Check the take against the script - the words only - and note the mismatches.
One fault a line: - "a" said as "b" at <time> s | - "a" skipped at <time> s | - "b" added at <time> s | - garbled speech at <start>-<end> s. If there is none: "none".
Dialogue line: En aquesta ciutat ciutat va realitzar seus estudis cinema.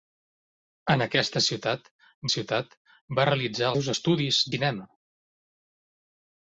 none